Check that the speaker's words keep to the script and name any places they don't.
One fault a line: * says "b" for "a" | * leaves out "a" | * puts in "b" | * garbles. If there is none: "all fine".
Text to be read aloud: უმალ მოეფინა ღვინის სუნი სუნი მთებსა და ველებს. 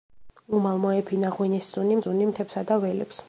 all fine